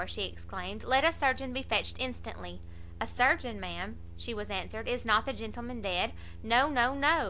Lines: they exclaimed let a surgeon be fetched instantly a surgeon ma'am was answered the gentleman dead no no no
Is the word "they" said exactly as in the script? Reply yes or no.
no